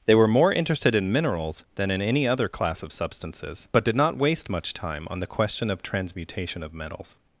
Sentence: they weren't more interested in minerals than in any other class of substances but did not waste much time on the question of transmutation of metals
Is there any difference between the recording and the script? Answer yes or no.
yes